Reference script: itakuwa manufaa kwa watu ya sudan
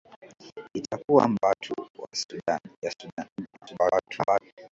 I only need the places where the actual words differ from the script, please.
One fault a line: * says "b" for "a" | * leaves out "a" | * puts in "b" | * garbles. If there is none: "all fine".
* leaves out "manufaa kwa"
* garbles